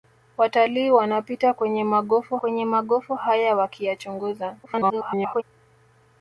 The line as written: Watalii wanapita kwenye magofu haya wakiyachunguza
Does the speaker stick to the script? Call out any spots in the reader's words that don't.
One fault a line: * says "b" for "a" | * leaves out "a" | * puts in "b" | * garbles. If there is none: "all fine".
* puts in "kwenye magofu"
* garbles